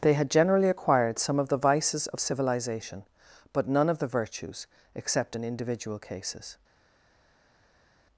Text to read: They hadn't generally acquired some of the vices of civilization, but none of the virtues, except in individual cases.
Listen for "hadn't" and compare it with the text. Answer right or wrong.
wrong